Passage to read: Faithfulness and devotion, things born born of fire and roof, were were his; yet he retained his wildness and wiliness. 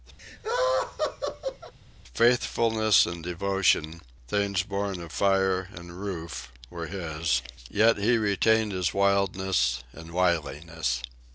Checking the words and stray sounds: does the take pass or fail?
fail